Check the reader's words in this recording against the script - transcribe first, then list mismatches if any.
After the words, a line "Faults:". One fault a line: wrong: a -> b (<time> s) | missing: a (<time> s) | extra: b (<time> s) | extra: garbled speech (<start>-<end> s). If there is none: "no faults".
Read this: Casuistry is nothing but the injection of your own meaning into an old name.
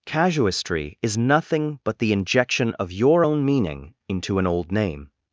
Casuistry is nothing but the injection of your own meaning into an old name.
Faults:
no faults